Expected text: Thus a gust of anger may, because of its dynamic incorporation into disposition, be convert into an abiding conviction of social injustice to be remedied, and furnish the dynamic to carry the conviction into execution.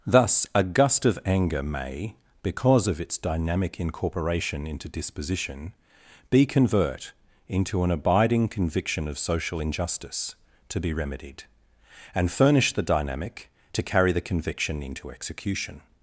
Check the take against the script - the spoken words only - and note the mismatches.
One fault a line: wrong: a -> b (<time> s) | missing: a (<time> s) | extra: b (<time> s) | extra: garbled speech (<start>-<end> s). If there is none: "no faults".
no faults